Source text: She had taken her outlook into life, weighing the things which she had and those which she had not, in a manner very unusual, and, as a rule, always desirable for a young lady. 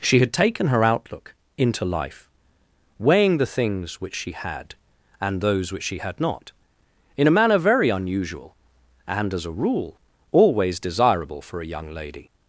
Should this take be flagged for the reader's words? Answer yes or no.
no